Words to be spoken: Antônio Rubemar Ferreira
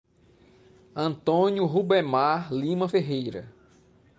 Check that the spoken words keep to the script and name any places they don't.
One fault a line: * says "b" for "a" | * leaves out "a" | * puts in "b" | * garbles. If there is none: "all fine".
* puts in "Lima"